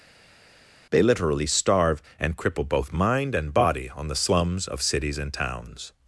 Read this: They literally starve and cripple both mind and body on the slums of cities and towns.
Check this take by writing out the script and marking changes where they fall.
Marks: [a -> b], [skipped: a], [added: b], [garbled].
They literally starve and cripple both mind and body on the slums of cities and towns.